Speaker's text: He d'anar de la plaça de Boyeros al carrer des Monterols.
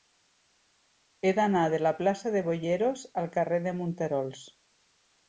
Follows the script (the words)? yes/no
no